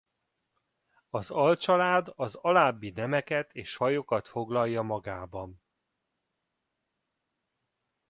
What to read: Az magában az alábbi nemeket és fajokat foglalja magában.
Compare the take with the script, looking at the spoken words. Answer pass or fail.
fail